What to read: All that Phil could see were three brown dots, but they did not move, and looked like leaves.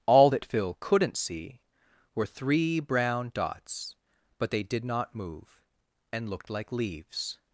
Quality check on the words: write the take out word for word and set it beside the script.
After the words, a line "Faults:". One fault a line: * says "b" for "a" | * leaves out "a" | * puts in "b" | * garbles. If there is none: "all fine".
All that Phil couldn't see were three brown dots, but they did not move, and looked like leaves.
Faults:
* says "couldn't" for "could"